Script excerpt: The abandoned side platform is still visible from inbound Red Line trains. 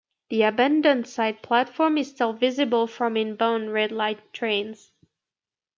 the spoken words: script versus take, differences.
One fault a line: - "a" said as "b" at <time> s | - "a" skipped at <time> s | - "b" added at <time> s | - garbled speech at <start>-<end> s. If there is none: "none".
none